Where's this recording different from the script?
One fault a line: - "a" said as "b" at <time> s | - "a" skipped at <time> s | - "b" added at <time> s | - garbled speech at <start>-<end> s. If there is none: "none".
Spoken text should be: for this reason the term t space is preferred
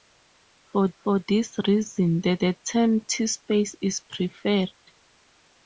- "for" added at 1.0 s
- "the" added at 2.4 s